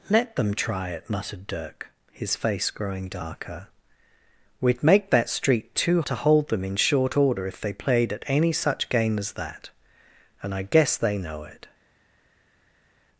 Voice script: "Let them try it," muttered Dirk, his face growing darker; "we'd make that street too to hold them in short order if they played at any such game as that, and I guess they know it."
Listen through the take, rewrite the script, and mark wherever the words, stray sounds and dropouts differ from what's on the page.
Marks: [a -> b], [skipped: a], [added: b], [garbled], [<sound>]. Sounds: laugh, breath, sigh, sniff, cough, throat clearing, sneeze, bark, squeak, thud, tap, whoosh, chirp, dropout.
"Let them try it," muttered Dirk, his face growing darker; "we'd make that street too to hold them in short order if they played at any such game as that, and I guess they know it."